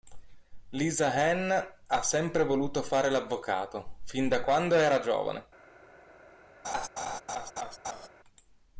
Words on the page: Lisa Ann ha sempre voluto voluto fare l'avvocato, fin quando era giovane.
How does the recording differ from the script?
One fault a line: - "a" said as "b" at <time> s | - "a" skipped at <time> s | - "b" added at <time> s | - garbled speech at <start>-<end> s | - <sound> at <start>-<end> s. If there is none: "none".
- "voluto" skipped at 2.8 s
- "da" added at 4.3 s
- laugh at 6.6-8.1 s